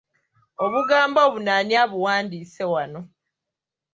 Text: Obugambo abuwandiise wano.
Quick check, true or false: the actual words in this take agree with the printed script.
false